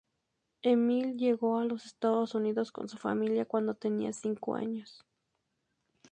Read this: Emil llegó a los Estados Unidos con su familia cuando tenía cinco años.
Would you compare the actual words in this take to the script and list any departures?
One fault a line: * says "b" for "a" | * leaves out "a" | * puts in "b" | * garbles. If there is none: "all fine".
all fine